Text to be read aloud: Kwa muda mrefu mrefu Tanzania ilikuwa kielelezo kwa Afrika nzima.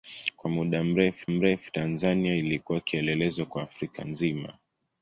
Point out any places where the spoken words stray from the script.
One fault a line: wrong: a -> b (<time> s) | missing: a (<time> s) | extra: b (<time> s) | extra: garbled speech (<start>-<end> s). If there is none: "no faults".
no faults